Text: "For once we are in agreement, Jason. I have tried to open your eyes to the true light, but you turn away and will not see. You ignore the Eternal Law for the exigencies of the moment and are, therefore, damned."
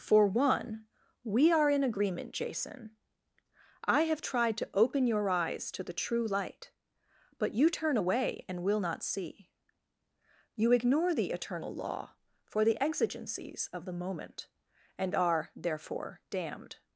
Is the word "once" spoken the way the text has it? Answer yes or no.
no